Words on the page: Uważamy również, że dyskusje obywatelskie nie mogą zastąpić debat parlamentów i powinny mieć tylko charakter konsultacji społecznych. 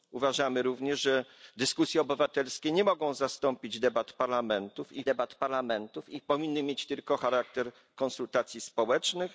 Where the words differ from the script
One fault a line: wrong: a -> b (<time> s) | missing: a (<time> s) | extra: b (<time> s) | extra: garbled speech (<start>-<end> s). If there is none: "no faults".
extra: debat parlamentów i (5.0 s)